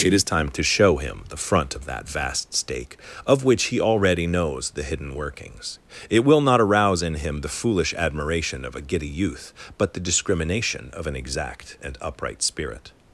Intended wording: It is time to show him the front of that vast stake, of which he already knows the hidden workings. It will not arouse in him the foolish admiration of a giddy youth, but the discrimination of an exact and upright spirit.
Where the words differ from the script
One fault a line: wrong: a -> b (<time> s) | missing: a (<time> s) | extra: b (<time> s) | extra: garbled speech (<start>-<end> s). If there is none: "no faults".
no faults